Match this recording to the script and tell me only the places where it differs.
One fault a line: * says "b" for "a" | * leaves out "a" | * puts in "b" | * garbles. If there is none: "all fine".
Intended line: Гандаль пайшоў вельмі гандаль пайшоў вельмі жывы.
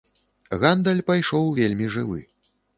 * leaves out "гандаль пайшоў вельмі"